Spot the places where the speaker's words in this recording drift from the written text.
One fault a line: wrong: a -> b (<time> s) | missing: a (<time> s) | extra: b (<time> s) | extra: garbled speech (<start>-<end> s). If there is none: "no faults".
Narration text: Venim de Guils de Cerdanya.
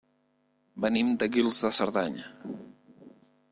no faults